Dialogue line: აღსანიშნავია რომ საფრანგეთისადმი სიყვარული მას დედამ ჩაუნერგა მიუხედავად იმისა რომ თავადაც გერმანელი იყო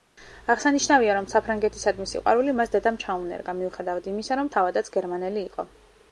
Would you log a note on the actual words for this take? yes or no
no